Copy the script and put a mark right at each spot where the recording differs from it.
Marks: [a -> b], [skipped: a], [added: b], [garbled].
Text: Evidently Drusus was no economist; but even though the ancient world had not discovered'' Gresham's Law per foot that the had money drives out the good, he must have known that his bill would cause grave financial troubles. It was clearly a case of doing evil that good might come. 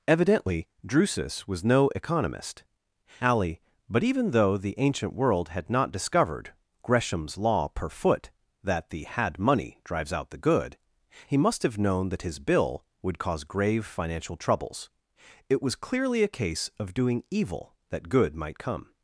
Evidently Drusus was no economist; [added: alley] but even though the ancient world had not discovered'' Gresham's Law per foot that the had money drives out the good, he must have known that his bill would cause grave financial troubles. It was clearly a case of doing evil that good might come.